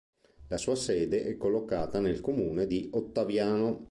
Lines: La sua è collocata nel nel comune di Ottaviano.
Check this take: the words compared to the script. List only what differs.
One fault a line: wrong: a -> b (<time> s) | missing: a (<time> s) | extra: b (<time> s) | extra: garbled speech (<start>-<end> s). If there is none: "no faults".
extra: sede (0.8 s)
missing: nel (2.2 s)